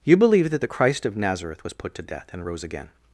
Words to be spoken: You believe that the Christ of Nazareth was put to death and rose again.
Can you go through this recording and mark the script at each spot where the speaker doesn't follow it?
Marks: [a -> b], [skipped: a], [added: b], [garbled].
You believe that the Christ of Nazareth was put to death and rose again.